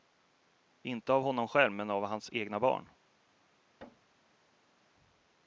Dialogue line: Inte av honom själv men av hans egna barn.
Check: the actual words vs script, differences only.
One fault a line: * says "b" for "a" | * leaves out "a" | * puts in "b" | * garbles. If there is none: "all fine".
all fine